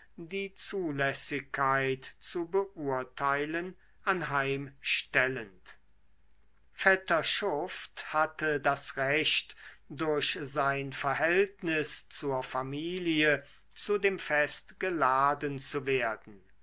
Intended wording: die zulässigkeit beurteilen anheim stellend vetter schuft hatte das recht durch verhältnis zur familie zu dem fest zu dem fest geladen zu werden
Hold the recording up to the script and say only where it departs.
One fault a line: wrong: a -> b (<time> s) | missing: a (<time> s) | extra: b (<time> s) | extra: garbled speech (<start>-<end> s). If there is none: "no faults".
extra: zu (2.2 s)
extra: sein (10.4 s)
missing: zu dem fest (14.8 s)